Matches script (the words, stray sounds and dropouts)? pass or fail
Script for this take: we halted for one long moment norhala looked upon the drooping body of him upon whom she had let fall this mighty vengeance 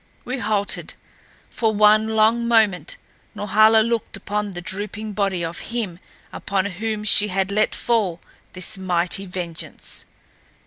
pass